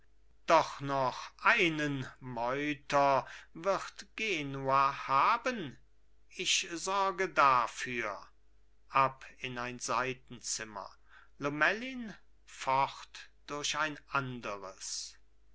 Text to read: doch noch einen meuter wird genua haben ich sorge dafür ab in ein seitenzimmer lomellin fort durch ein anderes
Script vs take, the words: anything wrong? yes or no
no